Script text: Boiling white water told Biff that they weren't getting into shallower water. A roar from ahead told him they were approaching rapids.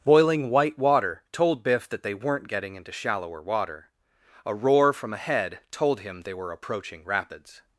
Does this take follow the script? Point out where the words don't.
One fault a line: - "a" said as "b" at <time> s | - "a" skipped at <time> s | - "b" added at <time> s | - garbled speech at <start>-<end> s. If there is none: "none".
none